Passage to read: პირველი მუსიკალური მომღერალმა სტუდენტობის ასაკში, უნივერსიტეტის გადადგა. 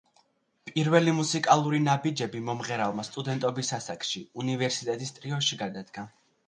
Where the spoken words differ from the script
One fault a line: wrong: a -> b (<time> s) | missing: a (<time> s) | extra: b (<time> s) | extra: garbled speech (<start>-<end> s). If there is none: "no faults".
extra: ნაბიჯები (1.9 s)
extra: ტრიოში (5.2 s)